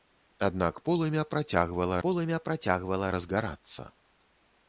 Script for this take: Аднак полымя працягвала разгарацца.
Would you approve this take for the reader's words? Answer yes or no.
no